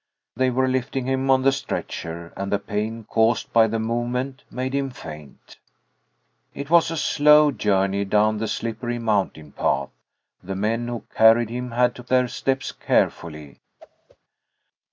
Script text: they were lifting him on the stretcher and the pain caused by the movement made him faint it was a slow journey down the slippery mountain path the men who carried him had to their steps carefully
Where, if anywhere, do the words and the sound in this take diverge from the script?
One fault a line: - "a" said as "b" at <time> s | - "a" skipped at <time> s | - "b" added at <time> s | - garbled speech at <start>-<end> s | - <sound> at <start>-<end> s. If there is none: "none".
- whoosh at 13.8-14.2 s